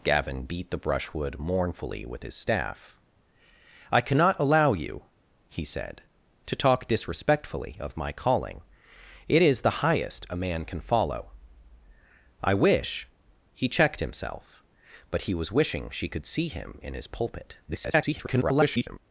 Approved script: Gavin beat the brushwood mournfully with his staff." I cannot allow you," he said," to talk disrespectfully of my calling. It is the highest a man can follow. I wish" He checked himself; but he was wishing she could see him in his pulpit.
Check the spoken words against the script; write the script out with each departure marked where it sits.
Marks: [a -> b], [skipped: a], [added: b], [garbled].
Gavin beat the brushwood mournfully with his staff." I cannot allow you," he said," to talk disrespectfully of my calling. It is the highest a man can follow. I wish" He checked himself; but he was wishing she could see him in his pulpit. [garbled]